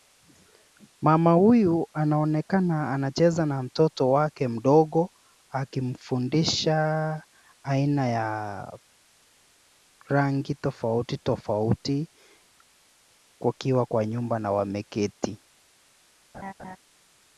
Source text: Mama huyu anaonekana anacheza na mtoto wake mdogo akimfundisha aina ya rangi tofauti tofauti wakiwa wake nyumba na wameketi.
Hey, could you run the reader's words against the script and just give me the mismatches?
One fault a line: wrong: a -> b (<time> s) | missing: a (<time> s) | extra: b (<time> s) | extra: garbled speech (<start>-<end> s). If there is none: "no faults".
wrong: wake -> kwa (13.8 s)